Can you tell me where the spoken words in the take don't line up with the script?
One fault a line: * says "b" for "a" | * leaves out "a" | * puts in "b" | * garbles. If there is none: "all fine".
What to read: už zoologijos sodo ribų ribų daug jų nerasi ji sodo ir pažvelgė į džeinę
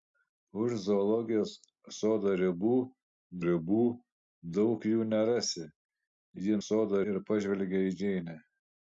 all fine